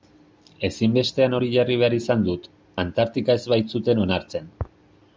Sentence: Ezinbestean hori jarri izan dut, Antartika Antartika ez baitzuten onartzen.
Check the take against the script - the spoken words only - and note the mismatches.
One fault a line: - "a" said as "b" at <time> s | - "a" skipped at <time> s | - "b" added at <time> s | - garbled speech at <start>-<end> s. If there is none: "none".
- "behar" added at 1.8 s
- "Antartika" skipped at 3.4 s